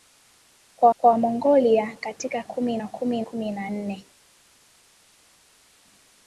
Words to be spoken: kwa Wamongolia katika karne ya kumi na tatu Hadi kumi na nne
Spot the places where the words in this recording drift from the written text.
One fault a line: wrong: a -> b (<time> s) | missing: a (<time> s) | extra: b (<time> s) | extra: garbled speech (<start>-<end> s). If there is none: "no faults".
extra: kwa (1.0 s)
wrong: karne -> kumi (2.4 s)
missing: na tatu Hadi (3.2 s)